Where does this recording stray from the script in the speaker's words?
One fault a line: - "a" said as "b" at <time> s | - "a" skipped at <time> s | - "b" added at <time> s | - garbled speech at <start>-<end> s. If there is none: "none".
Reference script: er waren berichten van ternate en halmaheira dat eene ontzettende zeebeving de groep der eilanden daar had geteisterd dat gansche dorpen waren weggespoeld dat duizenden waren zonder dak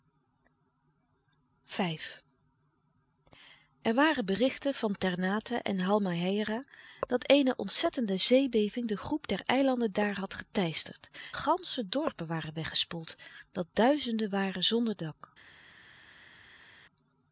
- "dat" skipped at 11.1 s